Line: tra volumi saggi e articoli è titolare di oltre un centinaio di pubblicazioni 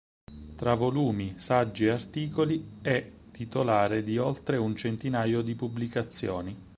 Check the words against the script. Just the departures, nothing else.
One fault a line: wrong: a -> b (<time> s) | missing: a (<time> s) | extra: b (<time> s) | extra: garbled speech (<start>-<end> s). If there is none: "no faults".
no faults